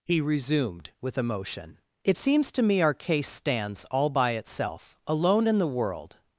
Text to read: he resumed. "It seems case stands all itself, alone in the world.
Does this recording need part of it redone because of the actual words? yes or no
yes